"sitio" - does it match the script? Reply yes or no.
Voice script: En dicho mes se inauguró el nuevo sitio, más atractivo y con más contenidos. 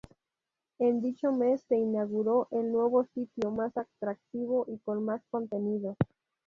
yes